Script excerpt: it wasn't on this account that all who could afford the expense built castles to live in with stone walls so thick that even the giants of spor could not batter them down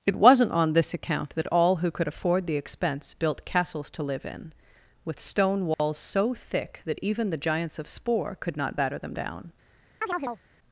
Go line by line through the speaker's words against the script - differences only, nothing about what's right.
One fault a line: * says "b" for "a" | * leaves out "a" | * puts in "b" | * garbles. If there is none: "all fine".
all fine